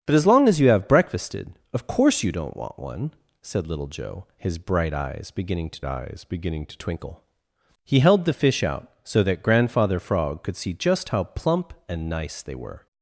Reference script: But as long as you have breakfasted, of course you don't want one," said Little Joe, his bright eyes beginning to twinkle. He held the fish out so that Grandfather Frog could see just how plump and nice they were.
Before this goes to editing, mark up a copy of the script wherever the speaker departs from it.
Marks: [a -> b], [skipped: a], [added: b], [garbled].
But as long as you have breakfasted, of course you don't want one," said Little Joe, his bright eyes beginning to [added: eyes beginning to] twinkle. He held the fish out so that Grandfather Frog could see just how plump and nice they were.